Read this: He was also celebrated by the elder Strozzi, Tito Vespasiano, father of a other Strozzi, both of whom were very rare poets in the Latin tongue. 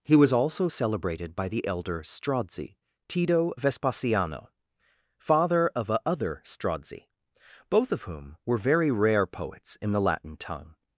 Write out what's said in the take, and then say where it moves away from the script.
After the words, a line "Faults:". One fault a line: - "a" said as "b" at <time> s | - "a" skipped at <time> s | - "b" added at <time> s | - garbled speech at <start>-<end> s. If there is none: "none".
He was also celebrated by the elder Strozzi, Tito Vespasiano, father of a other Strozzi, both of whom were very rare poets in the Latin tongue.
Faults:
none